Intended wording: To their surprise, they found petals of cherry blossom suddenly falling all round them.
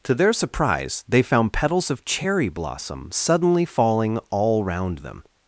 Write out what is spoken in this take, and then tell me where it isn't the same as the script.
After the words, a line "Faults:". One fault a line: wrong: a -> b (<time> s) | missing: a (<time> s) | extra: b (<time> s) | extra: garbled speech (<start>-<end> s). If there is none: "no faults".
To their surprise, they found petals of cherry blossom suddenly falling all round them.
Faults:
no faults